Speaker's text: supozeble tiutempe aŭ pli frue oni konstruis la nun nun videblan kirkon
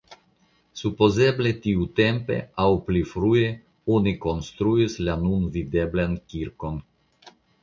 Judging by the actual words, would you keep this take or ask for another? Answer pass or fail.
fail